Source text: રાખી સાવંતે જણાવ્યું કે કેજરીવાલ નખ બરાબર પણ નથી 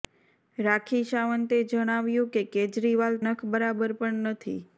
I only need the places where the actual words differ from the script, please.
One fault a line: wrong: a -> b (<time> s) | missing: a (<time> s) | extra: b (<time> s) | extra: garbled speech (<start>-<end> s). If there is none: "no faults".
no faults